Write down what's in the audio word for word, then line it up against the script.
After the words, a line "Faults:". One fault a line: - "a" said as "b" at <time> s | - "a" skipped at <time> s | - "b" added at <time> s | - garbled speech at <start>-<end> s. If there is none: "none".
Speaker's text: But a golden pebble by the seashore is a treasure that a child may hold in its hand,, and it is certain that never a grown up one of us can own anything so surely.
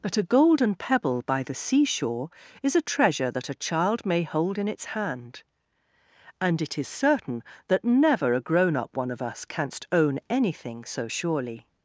But a golden pebble by the seashore is a treasure that a child may hold in its hand,, and it is certain that never a grown up one of us canst own anything so surely.
Faults:
- "can" said as "canst" at 9.4 s